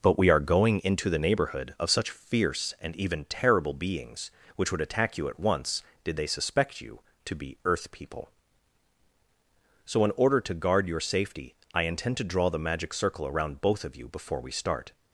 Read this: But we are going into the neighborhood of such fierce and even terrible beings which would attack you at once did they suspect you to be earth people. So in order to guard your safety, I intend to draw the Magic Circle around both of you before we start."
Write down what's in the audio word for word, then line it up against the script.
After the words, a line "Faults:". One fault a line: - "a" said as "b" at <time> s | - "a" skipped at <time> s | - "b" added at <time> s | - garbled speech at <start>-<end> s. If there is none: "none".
But we are going into the neighborhood of such fierce and even terrible beings which would attack you at once did they suspect you to be earth people. So in order to guard your safety, I intend to draw the Magic Circle around both of you before we start."
Faults:
none